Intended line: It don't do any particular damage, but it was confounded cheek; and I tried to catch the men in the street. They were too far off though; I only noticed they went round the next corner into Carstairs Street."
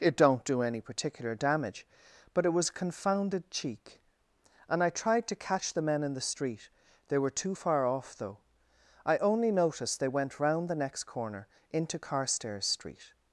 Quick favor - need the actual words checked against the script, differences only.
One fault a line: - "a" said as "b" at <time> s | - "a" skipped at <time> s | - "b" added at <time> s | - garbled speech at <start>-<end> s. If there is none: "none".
none